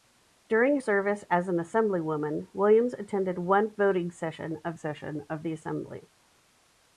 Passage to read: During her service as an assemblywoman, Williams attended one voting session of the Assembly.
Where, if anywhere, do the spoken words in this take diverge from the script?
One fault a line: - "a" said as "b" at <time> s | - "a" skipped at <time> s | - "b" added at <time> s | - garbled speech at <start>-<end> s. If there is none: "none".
- "her" skipped at 0.8 s
- "session of" added at 4.7 s